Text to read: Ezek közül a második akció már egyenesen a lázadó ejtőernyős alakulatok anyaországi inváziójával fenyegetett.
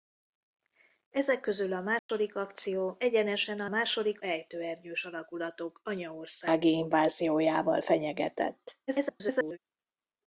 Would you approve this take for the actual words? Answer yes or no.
no